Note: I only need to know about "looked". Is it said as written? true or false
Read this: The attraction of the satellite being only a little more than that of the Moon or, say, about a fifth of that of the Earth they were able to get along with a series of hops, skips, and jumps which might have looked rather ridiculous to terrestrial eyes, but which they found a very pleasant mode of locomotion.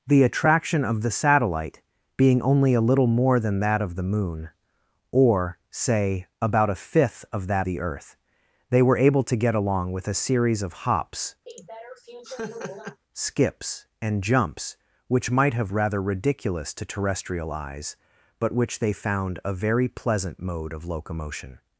false